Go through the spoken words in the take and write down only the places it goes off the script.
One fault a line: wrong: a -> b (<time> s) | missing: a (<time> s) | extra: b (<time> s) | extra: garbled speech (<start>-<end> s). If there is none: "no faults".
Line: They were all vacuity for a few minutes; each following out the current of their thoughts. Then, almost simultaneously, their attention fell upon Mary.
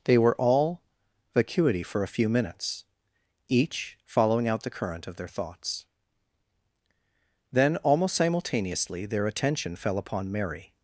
no faults